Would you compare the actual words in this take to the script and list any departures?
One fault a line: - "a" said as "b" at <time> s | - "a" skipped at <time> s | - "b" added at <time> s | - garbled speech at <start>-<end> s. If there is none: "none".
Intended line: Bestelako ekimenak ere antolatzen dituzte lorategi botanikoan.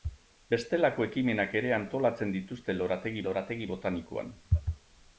- "lorategi" added at 3.2 s